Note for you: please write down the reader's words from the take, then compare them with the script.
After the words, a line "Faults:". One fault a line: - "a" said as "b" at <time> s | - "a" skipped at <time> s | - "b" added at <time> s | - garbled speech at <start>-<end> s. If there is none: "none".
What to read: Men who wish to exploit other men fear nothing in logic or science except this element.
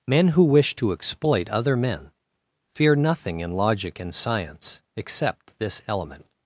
Men who wish to exploit other men fear nothing in logic and science except this element.
Faults:
- "or" said as "and" at 4.0 s